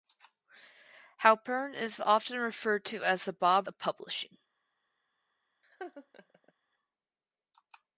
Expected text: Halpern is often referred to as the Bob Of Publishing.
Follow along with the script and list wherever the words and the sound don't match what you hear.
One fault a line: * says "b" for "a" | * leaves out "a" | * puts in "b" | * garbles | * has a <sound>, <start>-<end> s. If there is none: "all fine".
* has a laugh, 5.6-6.5 s